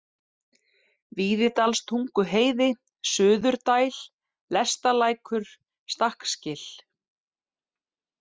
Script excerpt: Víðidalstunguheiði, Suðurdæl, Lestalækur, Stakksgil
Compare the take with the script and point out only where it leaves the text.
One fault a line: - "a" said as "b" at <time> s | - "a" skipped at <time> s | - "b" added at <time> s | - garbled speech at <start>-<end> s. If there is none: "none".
none